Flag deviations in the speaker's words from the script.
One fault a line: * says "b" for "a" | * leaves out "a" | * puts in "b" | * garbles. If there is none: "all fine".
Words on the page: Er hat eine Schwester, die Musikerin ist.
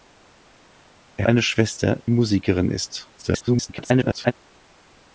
* leaves out "hat"
* leaves out "die"
* garbles